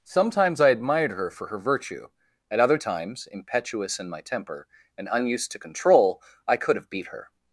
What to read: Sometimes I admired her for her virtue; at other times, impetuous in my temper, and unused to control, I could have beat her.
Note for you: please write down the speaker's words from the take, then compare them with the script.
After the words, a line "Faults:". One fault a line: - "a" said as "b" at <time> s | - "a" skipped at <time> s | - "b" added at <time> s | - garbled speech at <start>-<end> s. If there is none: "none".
Sometimes I admired her for her virtue; at other times, impetuous in my temper, and unused to control, I could have beat her.
Faults:
none